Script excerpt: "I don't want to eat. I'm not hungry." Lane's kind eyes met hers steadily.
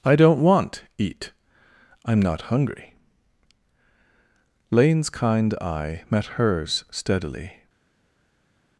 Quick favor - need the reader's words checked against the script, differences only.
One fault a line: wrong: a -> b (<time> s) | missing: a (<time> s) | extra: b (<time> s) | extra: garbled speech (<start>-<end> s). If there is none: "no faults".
missing: to (0.8 s)
wrong: eyes -> eye (5.6 s)